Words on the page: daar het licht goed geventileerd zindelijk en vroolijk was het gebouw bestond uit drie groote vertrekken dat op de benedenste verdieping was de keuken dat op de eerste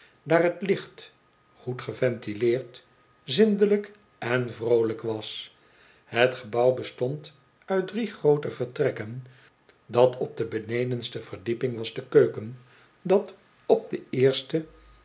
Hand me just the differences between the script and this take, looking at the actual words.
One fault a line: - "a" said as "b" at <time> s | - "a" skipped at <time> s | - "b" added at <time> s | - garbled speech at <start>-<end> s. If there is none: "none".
none